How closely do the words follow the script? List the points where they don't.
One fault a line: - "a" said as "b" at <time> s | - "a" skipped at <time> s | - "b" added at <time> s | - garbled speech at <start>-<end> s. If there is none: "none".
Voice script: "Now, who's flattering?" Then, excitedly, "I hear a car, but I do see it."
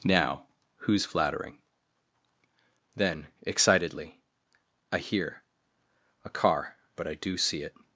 none